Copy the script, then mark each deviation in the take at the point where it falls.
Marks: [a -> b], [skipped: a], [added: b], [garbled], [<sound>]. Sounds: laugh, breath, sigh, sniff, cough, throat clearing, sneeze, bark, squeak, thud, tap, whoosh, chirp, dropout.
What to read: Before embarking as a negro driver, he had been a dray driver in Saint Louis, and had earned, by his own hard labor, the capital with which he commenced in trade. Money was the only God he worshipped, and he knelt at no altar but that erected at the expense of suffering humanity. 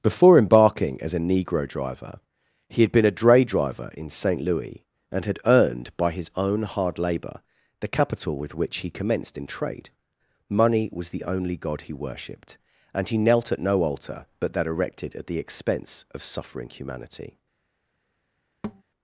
Before embarking as a negro driver, he had been a dray driver in Saint Louis, and had earned, by his own hard labor, the capital with which he commenced in trade. Money was the only God he worshipped, and he knelt at no altar but that erected at the expense of suffering humanity. [thud]